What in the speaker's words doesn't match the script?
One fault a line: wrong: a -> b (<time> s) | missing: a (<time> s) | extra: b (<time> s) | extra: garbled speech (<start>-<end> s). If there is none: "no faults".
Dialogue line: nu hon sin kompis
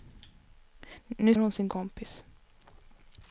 no faults